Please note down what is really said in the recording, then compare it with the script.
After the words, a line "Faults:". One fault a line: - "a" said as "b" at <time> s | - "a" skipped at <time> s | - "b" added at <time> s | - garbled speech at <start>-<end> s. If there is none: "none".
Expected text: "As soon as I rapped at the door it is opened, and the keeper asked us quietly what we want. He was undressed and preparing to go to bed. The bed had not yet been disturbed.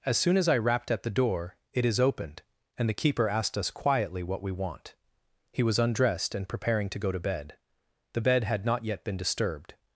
"As soon as I rapped at the door it is opened, and the keeper asked us quietly what we want. He was undressed and preparing to go to bed. The bed had not yet been disturbed.
Faults:
none